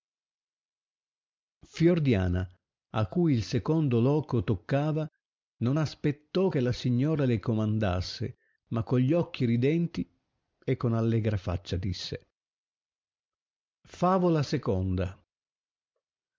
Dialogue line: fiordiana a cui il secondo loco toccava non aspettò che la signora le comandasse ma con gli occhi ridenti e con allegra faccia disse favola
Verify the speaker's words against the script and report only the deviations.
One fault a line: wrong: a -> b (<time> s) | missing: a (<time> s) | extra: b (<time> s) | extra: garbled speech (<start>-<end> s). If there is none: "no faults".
no faults